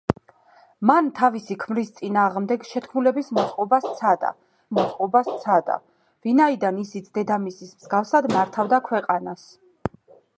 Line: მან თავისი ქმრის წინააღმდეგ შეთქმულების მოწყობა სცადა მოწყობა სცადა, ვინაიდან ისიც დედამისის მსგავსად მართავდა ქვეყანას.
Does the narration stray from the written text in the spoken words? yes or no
no